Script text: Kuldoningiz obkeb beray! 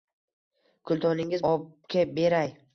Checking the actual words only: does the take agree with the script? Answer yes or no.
yes